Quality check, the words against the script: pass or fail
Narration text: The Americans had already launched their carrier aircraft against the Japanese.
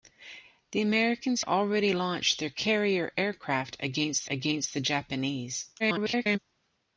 fail